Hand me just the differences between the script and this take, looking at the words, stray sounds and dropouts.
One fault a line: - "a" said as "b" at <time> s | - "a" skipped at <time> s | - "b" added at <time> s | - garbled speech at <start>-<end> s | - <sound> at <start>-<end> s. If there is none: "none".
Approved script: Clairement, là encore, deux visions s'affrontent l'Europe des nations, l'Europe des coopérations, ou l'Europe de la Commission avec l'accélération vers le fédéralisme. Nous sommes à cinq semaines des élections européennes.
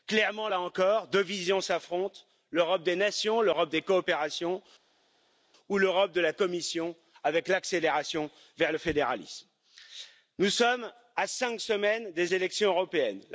none